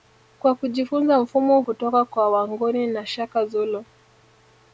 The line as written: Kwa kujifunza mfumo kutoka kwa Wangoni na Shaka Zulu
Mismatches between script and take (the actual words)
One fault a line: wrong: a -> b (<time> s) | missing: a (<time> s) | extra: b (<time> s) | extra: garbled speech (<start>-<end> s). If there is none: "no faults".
no faults